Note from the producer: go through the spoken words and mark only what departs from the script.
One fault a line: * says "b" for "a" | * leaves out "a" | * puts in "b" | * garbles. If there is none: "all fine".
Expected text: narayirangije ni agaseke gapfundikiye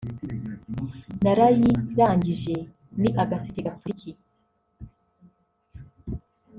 all fine